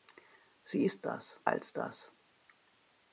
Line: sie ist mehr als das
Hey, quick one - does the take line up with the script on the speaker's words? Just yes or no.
no